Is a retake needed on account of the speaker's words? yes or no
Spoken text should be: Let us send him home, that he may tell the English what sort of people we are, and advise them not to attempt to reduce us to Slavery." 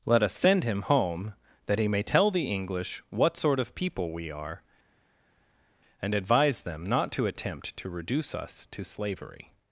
no